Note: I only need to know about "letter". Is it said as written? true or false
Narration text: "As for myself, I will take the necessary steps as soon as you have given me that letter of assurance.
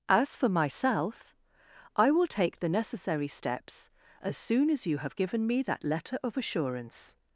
true